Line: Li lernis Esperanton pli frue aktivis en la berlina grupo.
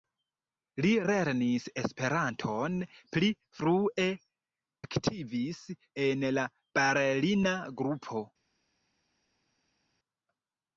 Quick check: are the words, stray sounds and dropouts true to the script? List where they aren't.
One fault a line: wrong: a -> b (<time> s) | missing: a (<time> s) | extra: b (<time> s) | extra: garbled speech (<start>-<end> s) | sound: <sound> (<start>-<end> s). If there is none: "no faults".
no faults